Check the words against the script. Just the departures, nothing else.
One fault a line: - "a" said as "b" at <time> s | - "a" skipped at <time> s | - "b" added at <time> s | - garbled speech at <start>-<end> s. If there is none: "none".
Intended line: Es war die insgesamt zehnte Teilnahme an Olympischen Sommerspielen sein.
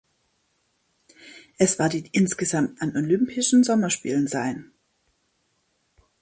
- "zehnte Teilnahme" skipped at 2.8 s